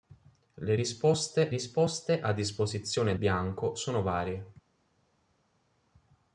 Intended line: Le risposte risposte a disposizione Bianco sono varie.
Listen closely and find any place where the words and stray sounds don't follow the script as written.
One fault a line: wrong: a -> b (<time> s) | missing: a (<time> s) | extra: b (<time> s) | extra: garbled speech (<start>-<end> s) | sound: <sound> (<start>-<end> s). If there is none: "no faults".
no faults